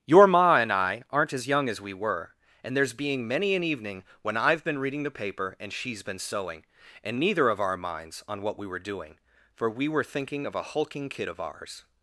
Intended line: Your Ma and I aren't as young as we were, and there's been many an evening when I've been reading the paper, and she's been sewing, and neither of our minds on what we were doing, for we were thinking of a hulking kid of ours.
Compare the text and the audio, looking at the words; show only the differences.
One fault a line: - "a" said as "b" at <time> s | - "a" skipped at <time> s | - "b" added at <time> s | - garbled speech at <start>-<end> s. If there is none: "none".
- "been" said as "being" at 2.9 s